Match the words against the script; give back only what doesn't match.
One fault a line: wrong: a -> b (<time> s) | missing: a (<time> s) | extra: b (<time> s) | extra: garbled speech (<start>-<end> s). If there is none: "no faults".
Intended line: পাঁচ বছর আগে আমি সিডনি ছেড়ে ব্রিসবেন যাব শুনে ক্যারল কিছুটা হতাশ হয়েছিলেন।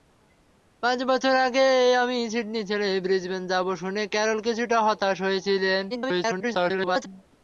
extra: garbled speech (5.9-7.1 s)